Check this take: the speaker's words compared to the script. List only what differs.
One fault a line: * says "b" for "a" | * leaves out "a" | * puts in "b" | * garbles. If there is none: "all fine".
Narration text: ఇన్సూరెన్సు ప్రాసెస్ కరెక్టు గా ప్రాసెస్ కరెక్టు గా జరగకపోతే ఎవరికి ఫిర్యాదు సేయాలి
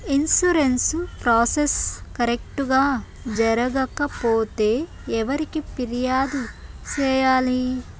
* leaves out "ప్రాసెస్ కరెక్టు గా"